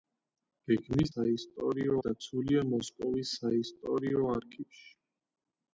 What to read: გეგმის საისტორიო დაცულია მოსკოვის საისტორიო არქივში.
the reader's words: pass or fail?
pass